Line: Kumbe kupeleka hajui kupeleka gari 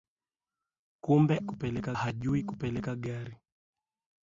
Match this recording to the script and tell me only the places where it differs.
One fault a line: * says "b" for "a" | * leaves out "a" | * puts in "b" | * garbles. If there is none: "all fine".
all fine